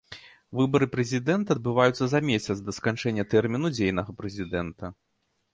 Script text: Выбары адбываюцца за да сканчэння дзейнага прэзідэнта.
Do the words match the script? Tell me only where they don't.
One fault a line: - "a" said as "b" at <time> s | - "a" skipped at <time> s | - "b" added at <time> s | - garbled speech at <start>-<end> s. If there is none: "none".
- "прэзідэнта" added at 0.9 s
- "месяц" added at 2.3 s
- "тэрміну" added at 3.3 s